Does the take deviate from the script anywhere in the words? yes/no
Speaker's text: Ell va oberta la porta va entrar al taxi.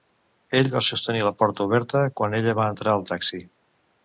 yes